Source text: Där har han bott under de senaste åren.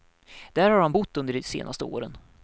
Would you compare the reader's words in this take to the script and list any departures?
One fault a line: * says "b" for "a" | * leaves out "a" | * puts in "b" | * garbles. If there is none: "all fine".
all fine